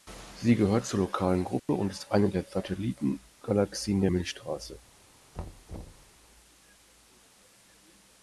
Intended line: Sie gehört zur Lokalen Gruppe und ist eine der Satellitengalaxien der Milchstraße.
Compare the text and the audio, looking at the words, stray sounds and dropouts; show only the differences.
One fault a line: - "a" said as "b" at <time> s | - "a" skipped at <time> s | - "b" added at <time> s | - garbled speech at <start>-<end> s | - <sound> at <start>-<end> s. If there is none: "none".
- dropout at 1.6-1.7 s
- thud at 5.3-6.1 s